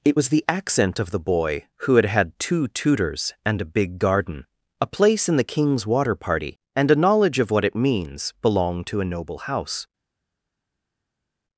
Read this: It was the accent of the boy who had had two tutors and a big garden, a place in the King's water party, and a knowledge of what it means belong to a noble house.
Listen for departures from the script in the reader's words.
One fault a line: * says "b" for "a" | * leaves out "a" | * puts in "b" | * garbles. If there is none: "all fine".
all fine